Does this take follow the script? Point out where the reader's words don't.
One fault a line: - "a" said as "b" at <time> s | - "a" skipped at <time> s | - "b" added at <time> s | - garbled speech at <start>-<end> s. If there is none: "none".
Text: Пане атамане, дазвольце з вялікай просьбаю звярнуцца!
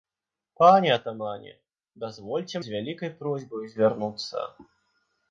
none